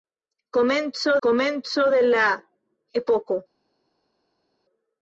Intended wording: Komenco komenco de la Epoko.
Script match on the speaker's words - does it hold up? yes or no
yes